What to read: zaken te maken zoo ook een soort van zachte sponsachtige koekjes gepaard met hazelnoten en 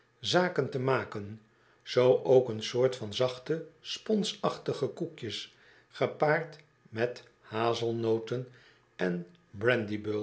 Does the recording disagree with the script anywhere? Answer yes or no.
no